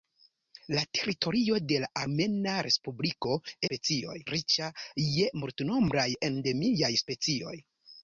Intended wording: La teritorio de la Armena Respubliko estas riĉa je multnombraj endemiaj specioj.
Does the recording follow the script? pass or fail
fail